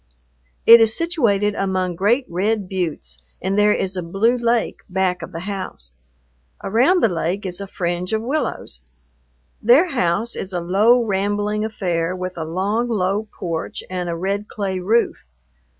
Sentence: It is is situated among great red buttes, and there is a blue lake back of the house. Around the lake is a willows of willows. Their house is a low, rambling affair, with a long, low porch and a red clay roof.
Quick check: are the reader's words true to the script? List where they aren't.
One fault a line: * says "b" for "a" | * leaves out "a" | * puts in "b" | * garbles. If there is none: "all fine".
* leaves out "is"
* says "fringe" for "willows"